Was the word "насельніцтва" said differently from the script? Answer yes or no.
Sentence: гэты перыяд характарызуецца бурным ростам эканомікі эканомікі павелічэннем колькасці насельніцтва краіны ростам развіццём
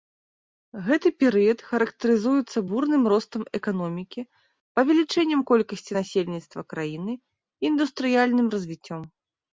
no